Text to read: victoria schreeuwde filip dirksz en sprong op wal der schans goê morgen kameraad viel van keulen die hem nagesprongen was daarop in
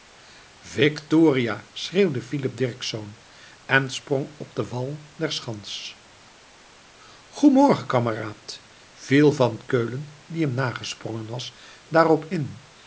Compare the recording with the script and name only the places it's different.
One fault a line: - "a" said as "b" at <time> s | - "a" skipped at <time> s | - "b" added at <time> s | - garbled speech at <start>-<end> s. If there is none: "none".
- "den" added at 4.6 s